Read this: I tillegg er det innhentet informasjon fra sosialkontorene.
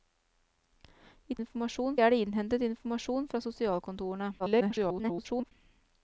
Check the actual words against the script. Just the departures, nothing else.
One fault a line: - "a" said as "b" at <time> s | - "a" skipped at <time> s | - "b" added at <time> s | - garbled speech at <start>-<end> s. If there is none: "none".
- "tillegg" said as "informasjon" at 1.4 s
- garbled speech at 4.4-5.5 s